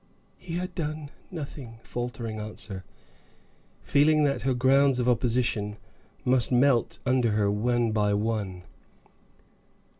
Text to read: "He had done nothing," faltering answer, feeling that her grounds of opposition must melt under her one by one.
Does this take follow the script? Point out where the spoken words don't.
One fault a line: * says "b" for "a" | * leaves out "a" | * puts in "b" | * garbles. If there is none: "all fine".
all fine